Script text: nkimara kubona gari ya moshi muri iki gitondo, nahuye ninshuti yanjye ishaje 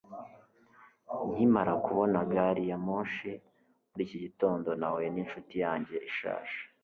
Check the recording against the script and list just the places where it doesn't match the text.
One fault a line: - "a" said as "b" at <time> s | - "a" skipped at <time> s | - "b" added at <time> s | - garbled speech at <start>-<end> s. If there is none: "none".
none